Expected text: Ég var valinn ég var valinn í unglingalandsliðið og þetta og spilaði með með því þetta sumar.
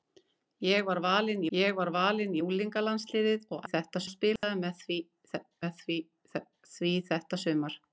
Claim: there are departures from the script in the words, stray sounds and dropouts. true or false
true